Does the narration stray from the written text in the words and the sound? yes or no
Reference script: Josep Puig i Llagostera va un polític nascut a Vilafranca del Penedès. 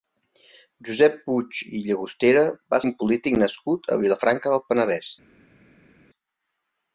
no